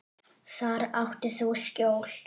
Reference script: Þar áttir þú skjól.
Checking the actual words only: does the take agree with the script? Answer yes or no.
yes